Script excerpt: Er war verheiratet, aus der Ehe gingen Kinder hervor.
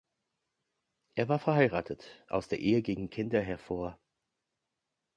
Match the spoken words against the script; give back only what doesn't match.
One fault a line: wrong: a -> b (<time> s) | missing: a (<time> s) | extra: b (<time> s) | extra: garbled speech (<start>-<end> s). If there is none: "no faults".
no faults